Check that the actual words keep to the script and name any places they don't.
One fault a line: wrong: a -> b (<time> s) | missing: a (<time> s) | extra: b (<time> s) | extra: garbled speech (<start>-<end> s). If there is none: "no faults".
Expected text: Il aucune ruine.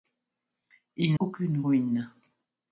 no faults